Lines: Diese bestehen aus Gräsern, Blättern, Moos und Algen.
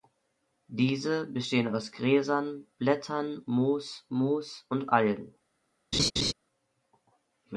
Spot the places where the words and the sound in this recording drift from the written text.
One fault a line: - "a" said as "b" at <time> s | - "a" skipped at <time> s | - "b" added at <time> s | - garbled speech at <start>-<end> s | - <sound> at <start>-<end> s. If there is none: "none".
- "Moos" added at 4.1 s
- laugh at 5.9-6.3 s